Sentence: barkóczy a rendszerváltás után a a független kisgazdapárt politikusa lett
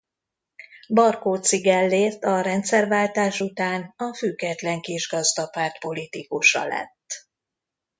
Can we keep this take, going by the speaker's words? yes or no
no